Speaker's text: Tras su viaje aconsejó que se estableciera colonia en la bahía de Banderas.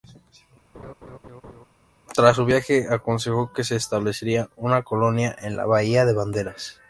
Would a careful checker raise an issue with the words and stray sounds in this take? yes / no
yes